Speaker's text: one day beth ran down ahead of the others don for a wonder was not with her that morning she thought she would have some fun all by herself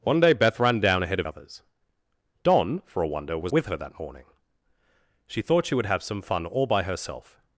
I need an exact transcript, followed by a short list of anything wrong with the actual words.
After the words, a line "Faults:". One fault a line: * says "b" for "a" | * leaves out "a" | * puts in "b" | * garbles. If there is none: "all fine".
one day beth ran down ahead of others don for a wonder was with her that morning she thought she would have some fun all by herself
Faults:
* leaves out "the"
* leaves out "not"